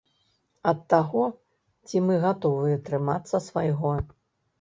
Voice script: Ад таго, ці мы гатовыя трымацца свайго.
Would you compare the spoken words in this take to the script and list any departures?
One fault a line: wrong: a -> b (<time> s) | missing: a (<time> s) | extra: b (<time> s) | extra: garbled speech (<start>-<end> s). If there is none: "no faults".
no faults